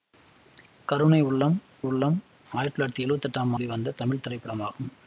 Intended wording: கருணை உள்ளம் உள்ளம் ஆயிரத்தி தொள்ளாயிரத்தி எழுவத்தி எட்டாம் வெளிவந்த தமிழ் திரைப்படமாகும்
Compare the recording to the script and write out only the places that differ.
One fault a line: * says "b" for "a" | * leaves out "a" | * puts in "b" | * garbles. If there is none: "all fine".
all fine